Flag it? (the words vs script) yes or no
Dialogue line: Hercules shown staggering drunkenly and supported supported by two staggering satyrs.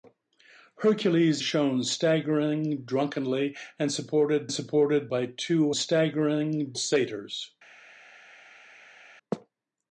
no